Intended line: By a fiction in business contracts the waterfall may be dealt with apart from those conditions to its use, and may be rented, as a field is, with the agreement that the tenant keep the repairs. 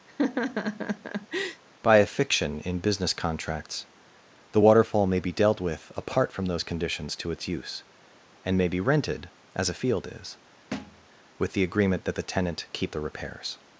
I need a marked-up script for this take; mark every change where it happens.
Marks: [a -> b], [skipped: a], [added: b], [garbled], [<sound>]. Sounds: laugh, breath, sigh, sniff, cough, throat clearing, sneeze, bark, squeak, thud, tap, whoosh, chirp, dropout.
[laugh] By a fiction in business contracts the waterfall may be dealt with apart from those conditions to its use, and may be rented, as a field is, [thud] with the agreement that the tenant keep the repairs.